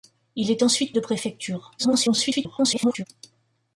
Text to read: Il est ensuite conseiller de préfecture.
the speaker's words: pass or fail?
fail